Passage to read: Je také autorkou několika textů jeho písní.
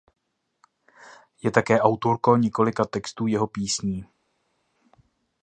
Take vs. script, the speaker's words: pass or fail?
pass